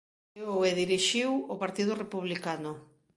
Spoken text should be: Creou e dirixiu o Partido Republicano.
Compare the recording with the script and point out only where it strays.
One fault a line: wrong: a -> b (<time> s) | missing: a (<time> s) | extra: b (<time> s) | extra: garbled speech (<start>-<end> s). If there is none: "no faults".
no faults